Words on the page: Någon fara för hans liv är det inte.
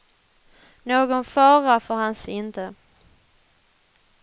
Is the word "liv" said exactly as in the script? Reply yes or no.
no